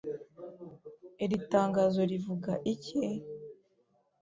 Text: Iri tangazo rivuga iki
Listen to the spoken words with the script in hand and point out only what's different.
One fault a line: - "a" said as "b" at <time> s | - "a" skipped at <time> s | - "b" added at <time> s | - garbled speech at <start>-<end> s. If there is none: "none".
none